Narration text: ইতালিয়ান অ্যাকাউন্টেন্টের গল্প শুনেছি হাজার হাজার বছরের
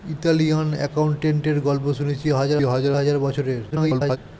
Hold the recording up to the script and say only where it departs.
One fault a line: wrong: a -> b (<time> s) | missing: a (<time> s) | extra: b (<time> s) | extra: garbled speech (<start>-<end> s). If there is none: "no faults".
extra: হাজার (2.9 s)
extra: garbled speech (3.7-4.2 s)